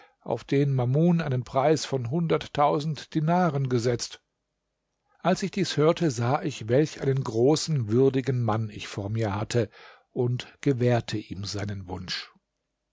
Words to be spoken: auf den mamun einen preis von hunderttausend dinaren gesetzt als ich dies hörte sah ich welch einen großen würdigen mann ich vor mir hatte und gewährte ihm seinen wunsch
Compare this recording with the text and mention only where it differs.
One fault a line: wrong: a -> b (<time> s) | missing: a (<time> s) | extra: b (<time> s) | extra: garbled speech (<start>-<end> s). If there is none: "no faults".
no faults